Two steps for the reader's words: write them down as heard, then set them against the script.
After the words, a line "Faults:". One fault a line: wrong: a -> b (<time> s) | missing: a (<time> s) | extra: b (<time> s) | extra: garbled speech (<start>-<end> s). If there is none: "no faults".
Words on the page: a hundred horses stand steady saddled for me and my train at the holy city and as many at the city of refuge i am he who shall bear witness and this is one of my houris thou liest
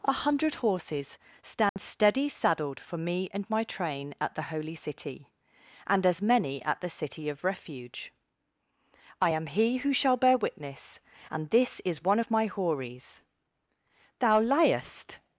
a hundred horses stand steady saddled for me and my train at the holy city and as many at the city of refuge i am he who shall bear witness and this is one of my houris thou liest
Faults:
no faults